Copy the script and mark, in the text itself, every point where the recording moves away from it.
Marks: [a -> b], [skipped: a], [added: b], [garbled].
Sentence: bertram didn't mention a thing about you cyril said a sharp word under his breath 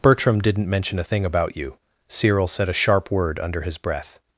bertram didn't mention a thing about you cyril said a sharp word under his breath